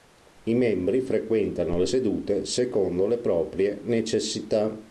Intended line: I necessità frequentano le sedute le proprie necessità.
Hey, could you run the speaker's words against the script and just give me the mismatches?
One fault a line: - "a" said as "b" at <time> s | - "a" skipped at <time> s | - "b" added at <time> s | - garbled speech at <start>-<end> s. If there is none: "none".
- "necessità" said as "membri" at 0.6 s
- "secondo" added at 2.5 s